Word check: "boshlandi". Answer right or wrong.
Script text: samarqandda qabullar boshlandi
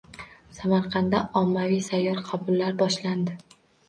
right